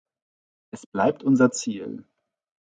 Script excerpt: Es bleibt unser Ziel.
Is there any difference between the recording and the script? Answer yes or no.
no